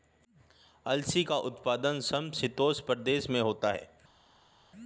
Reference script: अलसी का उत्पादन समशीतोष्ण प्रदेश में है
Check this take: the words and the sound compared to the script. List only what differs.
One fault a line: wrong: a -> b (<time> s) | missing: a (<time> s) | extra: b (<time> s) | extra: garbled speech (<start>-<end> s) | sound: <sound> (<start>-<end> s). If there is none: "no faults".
extra: होता (3.4 s)